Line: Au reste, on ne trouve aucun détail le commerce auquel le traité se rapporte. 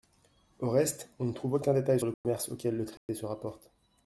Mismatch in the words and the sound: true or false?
true